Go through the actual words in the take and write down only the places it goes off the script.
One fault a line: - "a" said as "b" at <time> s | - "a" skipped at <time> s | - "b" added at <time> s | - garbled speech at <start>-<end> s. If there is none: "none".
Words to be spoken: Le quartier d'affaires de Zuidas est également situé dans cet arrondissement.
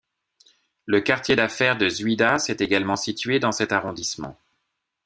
none